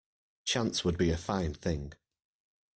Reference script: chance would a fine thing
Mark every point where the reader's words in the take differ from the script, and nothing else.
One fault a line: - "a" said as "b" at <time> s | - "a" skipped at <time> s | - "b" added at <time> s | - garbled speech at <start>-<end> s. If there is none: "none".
- "be" added at 1.0 s